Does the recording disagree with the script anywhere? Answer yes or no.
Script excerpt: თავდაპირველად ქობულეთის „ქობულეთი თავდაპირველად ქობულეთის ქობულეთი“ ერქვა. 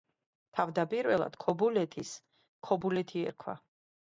yes